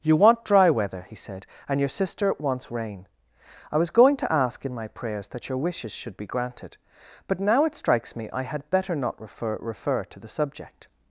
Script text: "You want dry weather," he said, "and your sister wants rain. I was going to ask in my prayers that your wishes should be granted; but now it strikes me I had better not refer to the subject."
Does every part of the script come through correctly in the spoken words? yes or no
no